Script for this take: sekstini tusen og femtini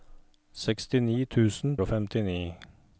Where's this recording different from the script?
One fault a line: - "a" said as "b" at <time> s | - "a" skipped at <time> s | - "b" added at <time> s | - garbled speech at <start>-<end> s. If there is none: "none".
none